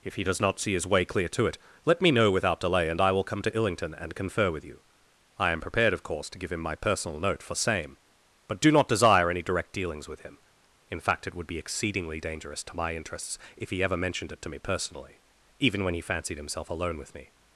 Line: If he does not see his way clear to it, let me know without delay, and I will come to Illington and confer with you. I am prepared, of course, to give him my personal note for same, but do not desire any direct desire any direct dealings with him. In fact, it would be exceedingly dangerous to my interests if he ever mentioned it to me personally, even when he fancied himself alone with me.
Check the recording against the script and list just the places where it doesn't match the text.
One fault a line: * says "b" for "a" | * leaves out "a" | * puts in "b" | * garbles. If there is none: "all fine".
* leaves out "desire any direct"